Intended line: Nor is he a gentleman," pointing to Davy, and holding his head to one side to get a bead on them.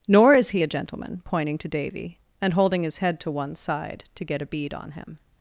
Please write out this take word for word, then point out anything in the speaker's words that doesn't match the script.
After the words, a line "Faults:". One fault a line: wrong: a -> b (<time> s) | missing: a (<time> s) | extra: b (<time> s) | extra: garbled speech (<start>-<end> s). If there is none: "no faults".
Nor is he a gentleman," pointing to Davy, and holding his head to one side to get a bead on him.
Faults:
wrong: them -> him (4.9 s)